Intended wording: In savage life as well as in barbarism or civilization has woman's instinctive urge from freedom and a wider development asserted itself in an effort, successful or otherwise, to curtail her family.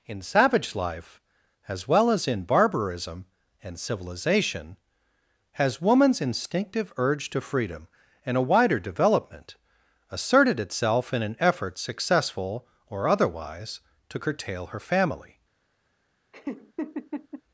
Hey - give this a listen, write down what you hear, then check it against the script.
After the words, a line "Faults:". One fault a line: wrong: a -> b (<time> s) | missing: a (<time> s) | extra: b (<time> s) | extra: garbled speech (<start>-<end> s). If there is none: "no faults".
In savage life as well as in barbarism and civilization has woman's instinctive urge to freedom and a wider development asserted itself in an effort, successful or otherwise, to curtail her family.
Faults:
wrong: or -> and (3.6 s)
wrong: from -> to (7.3 s)